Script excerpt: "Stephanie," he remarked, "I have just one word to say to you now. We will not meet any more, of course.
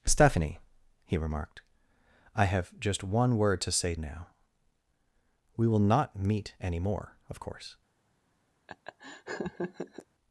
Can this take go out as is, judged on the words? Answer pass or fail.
fail